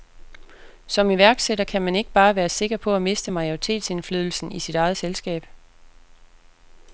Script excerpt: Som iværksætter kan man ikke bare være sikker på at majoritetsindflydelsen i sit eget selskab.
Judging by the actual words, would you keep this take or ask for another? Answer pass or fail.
fail